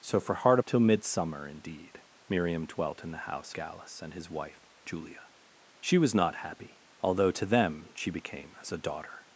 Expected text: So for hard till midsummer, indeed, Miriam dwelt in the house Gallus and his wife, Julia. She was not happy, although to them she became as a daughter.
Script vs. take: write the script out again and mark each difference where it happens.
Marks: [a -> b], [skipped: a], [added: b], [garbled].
So for hard till midsummer, indeed, Miriam dwelt in the house Gallus and his wife, Julia. She was not happy, although to them she became as a daughter.